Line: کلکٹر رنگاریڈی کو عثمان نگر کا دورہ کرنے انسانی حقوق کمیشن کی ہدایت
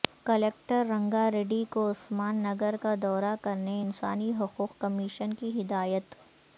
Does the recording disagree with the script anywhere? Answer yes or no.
no